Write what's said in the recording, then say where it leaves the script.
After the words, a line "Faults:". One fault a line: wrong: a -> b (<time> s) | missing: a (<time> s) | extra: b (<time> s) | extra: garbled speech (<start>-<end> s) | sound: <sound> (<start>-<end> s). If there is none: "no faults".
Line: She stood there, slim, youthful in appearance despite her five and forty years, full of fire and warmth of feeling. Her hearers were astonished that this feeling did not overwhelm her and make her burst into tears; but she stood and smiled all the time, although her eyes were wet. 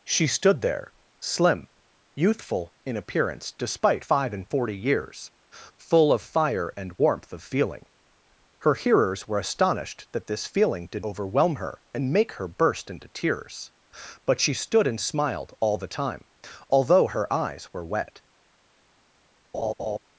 She stood there, slim, youthful in appearance despite five and forty years, full of fire and warmth of feeling. Her hearers were astonished that this feeling did overwhelm her and make her burst into tears; but she stood and smiled all the time, although her eyes were wet.
Faults:
missing: her (4.0 s)
missing: not (11.1 s)
sound: laugh (19.5-20.0 s)